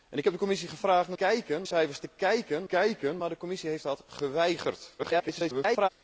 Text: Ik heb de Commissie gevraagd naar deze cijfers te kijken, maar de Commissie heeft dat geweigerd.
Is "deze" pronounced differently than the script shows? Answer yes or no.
yes